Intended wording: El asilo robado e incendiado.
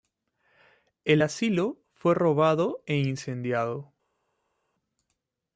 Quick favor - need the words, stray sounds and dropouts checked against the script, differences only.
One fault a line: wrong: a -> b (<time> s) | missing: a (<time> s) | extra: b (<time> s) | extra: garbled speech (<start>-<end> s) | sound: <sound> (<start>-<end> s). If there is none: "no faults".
extra: fue (1.9 s)